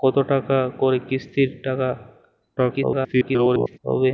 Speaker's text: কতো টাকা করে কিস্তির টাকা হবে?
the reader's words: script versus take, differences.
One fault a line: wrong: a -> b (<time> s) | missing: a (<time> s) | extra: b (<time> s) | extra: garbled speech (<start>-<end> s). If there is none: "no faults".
extra: garbled speech (2.6-3.8 s)